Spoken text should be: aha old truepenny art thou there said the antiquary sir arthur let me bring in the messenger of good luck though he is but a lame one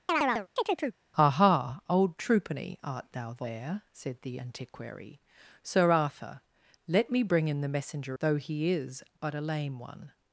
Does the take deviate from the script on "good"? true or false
true